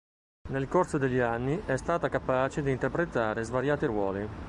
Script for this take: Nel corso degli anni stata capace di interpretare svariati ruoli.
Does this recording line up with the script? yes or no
no